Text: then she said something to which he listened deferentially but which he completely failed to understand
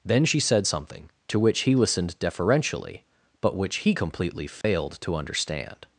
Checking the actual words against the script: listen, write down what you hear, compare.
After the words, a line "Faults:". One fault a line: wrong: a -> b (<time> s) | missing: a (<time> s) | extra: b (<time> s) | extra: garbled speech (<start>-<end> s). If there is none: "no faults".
then she said something to which he listened deferentially but which he completely failed to understand
Faults:
no faults